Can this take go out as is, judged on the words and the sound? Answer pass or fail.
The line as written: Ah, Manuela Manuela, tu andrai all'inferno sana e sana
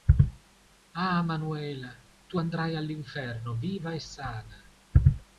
fail